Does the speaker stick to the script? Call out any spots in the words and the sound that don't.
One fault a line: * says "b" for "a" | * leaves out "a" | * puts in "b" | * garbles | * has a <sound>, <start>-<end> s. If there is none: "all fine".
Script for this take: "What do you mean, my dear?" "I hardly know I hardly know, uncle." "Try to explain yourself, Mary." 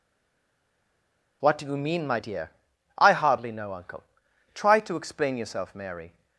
* leaves out "I hardly know"